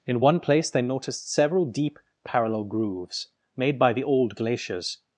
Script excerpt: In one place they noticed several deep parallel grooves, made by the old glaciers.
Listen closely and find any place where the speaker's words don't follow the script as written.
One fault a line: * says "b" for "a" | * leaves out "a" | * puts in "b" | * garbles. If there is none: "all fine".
all fine